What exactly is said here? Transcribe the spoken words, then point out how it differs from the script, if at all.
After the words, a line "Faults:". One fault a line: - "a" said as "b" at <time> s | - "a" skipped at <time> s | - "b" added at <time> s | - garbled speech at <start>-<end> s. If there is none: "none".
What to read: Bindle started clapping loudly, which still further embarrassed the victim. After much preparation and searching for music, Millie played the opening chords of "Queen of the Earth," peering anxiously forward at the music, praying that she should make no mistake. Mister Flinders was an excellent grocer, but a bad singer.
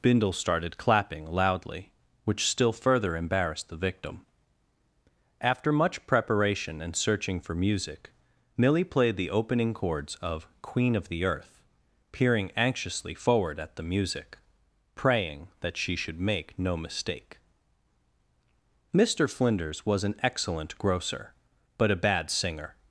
Bindle started clapping loudly, which still further embarrassed the victim. After much preparation and searching for music, Millie played the opening chords of "Queen of the Earth," peering anxiously forward at the music, praying that she should make no mistake. Mister Flinders was an excellent grocer, but a bad singer.
Faults:
none